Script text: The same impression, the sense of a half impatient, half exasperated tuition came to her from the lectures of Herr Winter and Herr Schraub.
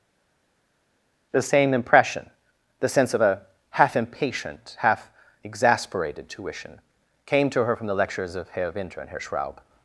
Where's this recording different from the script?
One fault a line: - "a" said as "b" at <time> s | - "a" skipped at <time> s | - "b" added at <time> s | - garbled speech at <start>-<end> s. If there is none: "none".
none